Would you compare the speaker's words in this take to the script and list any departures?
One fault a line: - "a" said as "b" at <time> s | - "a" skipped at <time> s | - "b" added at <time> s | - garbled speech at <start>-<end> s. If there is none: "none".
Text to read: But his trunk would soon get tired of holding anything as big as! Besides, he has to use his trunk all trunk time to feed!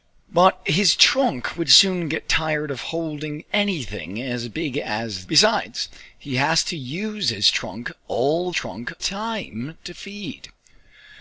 none